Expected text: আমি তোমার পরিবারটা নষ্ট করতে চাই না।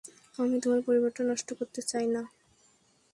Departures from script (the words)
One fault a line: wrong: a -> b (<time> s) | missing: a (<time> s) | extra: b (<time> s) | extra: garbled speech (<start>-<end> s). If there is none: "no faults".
no faults